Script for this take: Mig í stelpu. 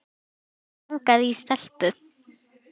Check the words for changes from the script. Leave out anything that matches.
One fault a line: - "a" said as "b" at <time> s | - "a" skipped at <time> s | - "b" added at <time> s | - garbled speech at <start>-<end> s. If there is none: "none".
- "langaði" added at 1.0 s